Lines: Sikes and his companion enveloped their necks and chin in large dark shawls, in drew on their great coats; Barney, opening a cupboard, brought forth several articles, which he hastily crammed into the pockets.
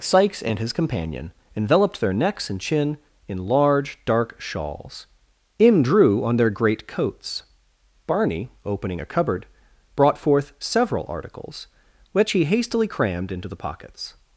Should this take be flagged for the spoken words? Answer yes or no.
no